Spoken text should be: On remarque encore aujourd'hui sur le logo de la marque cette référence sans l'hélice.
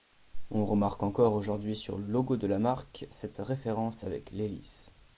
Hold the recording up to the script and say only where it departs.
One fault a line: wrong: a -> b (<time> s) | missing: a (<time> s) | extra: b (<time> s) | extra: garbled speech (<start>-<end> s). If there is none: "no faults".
wrong: sans -> avec (4.0 s)